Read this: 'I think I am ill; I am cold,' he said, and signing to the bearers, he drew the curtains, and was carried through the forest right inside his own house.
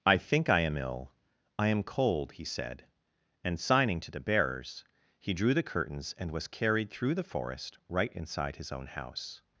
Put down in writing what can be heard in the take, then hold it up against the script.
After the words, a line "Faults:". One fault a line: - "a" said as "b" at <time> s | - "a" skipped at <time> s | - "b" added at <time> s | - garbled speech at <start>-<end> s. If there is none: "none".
'I think I am ill; I am cold,' he said, and signing to the bearers, he drew the curtains, and was carried through the forest right inside his own house.
Faults:
none